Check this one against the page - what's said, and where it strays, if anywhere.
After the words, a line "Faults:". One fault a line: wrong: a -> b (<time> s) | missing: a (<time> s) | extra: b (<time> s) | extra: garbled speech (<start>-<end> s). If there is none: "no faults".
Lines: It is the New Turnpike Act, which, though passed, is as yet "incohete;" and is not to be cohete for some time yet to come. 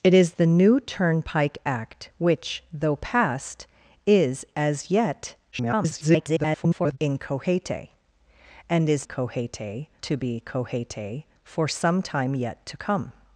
It is the New Turnpike Act, which, though passed, is as yet [garbled] "incohete;" and is cohete to be cohete for some time yet to come.
Faults:
extra: garbled speech (5.5-7.0 s)
wrong: not -> cohete (9.1 s)